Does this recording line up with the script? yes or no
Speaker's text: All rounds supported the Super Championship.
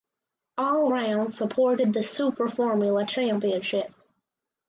no